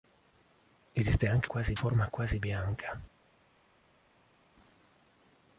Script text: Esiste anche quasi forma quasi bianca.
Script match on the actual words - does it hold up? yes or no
yes